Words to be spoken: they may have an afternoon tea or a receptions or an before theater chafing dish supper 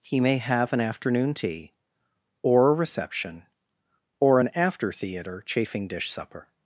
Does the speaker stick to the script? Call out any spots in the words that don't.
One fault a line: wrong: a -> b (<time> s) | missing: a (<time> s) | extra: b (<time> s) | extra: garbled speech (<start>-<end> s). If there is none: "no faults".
wrong: they -> he (0.0 s)
wrong: receptions -> reception (2.7 s)
wrong: before -> after (4.6 s)